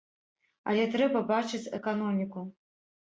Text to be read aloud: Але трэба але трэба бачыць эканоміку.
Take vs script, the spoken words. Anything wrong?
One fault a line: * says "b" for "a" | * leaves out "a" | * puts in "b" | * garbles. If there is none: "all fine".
* leaves out "але трэба"